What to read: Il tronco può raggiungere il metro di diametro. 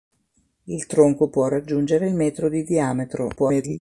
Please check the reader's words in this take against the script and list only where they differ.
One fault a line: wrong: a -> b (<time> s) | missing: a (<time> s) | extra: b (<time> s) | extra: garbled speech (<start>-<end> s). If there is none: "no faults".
extra: garbled speech (3.4-3.8 s)